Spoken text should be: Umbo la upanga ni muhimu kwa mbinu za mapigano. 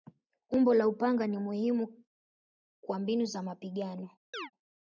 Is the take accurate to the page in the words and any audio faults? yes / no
no